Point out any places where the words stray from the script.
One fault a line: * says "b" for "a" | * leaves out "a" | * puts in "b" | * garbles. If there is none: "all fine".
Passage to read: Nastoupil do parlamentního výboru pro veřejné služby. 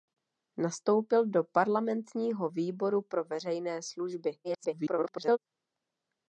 * garbles